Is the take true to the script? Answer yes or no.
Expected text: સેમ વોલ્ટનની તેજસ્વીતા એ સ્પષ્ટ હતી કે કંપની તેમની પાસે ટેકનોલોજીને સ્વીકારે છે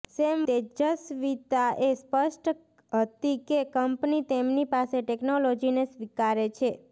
no